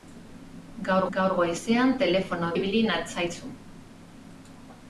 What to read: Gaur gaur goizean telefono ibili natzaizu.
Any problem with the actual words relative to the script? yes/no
no